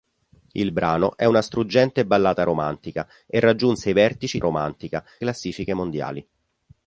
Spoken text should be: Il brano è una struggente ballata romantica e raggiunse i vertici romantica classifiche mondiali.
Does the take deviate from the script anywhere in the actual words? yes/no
no